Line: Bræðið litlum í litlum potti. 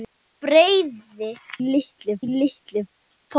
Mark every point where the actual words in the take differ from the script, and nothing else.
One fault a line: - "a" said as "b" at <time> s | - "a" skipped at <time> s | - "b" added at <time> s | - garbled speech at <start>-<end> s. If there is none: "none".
none